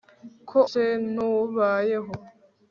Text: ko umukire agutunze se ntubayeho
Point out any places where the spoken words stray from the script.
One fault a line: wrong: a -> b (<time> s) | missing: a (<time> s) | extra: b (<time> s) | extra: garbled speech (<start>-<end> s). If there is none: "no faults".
missing: umukire agutunze (0.6 s)